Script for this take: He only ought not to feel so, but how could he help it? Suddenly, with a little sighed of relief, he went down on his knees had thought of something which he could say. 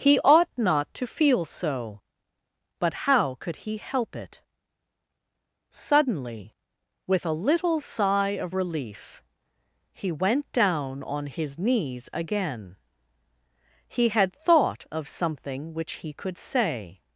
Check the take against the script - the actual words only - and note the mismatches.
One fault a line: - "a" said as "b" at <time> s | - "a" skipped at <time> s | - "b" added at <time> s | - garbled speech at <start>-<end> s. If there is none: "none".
- "only" skipped at 0.2 s
- "sighed" said as "sigh" at 7.8 s
- "again he" added at 12.1 s